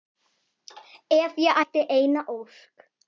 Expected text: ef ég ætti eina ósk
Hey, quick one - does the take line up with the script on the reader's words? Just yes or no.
yes